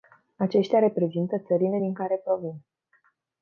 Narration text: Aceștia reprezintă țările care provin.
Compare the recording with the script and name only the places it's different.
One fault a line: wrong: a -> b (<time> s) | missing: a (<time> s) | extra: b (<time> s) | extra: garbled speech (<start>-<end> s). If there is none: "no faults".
extra: din (1.8 s)